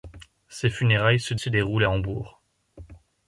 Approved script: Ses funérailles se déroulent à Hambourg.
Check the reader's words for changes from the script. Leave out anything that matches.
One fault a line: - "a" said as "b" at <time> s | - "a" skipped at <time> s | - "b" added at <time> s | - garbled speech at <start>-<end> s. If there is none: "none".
- "se" added at 1.4 s